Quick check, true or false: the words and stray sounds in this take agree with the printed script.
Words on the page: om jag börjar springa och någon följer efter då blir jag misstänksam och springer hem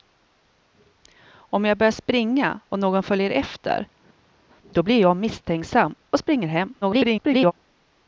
false